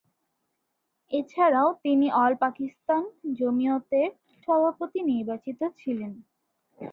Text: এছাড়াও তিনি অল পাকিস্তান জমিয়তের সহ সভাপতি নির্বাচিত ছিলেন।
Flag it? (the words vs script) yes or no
yes